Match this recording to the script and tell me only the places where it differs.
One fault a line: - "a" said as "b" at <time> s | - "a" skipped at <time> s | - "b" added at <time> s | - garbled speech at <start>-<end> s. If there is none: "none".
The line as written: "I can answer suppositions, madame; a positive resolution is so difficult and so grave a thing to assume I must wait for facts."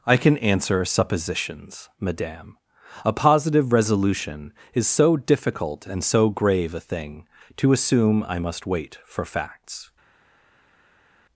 none